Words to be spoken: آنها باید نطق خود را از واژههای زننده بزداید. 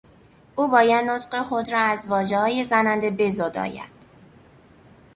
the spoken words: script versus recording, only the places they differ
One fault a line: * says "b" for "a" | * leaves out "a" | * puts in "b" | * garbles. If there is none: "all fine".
* says "او" for "آنها"